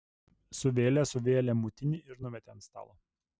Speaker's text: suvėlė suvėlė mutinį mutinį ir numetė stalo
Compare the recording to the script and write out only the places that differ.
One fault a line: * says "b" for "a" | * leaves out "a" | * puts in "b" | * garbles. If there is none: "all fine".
* leaves out "mutinį"
* puts in "ant"